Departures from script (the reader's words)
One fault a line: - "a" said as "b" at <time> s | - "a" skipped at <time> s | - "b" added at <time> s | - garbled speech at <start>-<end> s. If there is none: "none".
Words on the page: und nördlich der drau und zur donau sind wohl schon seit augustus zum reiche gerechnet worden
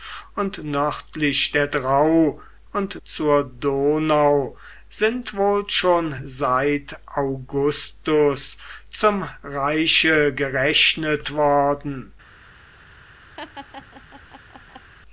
none